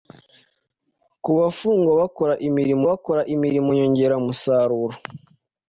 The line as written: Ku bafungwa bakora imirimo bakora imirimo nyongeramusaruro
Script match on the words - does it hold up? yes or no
yes